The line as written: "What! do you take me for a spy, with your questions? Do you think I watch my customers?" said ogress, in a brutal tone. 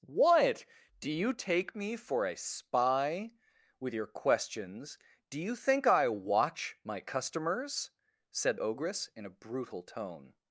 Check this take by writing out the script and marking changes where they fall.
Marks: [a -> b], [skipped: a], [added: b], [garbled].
"What! do you take me for a spy, with your questions? Do you think I watch my customers?" said ogress, in a brutal tone.